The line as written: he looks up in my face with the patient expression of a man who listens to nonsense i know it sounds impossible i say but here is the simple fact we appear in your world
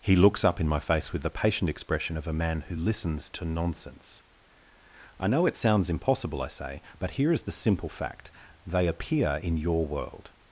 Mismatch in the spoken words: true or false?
true